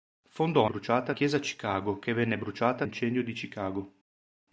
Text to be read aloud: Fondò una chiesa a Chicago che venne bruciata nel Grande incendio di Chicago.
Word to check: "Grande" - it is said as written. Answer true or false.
false